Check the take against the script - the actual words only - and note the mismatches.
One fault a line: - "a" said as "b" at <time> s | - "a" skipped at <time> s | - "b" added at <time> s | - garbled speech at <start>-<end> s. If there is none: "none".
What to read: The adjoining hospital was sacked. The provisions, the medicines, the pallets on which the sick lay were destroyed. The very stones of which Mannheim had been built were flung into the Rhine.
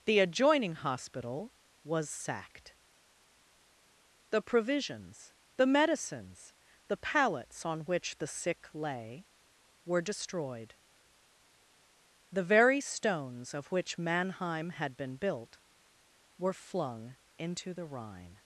none